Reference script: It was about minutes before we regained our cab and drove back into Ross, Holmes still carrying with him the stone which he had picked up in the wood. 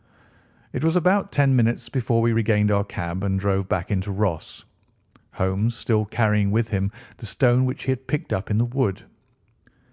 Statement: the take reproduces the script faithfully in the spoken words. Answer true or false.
false